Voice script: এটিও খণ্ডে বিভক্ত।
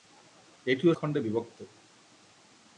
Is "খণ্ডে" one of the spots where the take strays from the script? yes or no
no